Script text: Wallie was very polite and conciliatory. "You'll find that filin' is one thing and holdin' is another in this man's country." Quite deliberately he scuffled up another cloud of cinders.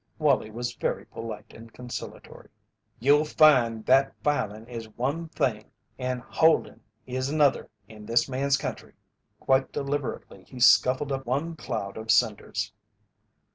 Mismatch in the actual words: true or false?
true